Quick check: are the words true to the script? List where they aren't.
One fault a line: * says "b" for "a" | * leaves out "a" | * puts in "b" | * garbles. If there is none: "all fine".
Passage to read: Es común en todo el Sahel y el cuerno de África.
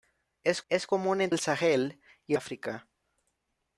* puts in "es"
* leaves out "todo"
* leaves out "el cuerno de"